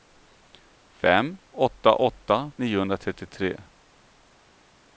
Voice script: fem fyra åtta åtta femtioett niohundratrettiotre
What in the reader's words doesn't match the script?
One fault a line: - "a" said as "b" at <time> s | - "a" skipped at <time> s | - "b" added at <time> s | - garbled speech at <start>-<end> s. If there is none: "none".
- "fyra" skipped at 1.4 s
- "femtioett" skipped at 2.5 s